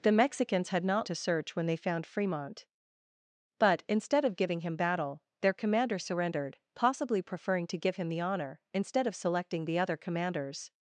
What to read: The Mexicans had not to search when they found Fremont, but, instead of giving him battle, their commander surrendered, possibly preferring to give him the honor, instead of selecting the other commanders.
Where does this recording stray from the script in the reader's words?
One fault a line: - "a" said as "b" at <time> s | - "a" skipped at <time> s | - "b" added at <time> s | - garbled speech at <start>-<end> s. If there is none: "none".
none